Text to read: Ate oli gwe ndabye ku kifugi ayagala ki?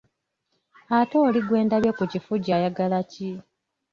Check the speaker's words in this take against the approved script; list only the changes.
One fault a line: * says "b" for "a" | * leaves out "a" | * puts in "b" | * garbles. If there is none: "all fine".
all fine